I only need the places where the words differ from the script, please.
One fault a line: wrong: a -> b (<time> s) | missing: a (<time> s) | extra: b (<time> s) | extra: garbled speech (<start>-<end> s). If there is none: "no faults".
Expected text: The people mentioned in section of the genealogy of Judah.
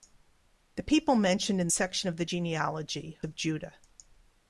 no faults